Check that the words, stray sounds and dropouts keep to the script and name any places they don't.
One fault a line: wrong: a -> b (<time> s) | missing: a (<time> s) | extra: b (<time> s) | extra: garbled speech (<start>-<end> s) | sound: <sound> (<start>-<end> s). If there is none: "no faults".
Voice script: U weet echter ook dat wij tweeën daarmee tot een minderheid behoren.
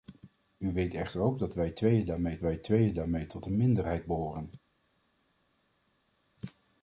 extra: wij tweeën daarmee (2.4 s)